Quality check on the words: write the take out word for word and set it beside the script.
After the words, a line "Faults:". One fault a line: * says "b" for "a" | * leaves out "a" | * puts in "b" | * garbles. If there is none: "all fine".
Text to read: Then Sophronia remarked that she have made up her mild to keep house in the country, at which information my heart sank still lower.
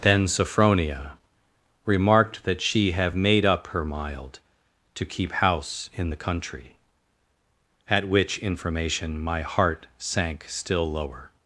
Then Sophronia remarked that she have made up her mild to keep house in the country, at which information my heart sank still lower.
Faults:
all fine